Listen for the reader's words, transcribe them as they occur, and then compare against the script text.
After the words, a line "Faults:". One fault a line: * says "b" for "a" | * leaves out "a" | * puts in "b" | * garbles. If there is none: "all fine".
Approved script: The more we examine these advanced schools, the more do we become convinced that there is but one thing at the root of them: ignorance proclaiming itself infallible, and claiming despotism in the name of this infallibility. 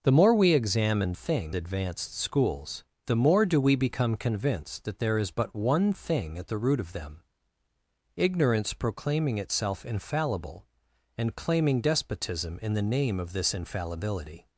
The more we examine thing advanced schools, the more do we become convinced that there is but one thing at the root of them: ignorance proclaiming itself infallible, and claiming despotism in the name of this infallibility.
Faults:
* says "thing" for "these"